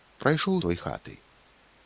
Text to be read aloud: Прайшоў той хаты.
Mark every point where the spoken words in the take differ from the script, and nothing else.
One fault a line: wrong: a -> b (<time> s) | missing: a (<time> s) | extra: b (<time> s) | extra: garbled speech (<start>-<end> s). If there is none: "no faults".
no faults